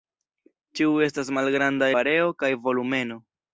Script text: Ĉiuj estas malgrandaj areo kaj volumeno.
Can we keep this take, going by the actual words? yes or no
yes